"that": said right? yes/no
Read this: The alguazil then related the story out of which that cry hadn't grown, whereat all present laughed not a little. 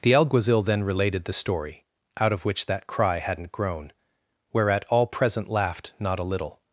yes